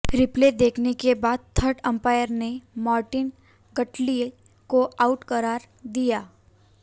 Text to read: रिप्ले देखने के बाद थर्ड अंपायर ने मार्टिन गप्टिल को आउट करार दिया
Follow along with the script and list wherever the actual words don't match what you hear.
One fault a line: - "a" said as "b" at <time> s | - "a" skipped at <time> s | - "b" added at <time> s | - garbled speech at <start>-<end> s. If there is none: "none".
none